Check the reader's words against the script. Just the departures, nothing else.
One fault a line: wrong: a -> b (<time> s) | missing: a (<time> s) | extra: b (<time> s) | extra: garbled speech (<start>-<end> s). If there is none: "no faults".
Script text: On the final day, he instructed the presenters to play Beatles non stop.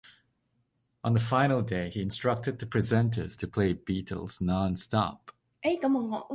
no faults